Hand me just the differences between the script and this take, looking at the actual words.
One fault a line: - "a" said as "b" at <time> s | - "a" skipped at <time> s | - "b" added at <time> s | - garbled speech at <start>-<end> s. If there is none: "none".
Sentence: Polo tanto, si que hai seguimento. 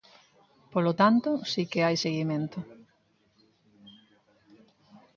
none